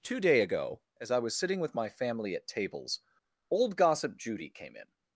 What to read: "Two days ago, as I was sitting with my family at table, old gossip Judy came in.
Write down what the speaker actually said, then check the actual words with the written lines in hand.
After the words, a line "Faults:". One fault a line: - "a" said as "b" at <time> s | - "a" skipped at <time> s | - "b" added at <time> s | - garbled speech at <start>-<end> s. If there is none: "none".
"Two day ago, as I was sitting with my family at tables, old gossip Judy came in.
Faults:
- "days" said as "day" at 0.2 s
- "table" said as "tables" at 2.5 s